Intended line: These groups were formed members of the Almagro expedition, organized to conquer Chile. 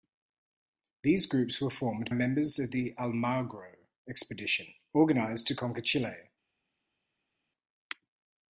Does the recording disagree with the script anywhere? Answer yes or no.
no